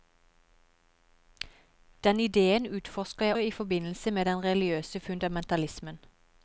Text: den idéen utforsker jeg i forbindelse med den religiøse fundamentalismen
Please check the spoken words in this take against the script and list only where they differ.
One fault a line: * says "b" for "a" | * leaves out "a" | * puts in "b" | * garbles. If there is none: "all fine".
all fine